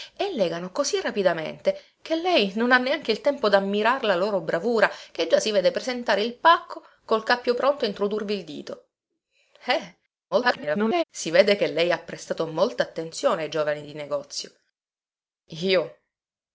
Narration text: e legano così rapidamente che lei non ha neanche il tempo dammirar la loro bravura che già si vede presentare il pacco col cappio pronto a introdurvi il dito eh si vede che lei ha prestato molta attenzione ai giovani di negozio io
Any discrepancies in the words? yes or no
yes